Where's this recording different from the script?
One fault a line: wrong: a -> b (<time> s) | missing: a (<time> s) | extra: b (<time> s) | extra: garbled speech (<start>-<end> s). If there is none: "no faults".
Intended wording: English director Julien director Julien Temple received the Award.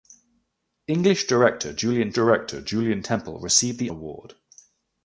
no faults